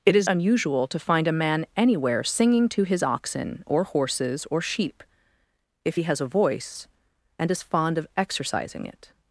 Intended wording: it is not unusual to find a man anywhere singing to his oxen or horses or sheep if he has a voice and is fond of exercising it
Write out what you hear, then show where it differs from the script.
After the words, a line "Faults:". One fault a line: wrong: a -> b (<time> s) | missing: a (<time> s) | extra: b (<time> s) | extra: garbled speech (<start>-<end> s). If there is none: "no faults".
it is unusual to find a man anywhere singing to his oxen or horses or sheep if he has a voice and is fond of exercising it
Faults:
missing: not (0.3 s)